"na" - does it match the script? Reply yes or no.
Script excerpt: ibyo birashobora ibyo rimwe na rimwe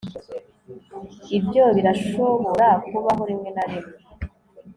yes